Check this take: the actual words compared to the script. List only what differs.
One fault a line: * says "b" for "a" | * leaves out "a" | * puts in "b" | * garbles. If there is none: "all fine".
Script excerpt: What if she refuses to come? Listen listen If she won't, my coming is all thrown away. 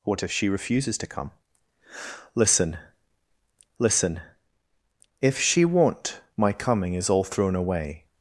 all fine